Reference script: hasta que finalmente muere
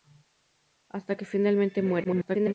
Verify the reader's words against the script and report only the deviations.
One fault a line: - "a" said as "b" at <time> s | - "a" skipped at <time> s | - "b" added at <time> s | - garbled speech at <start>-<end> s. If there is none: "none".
- garbled speech at 2.0-2.5 s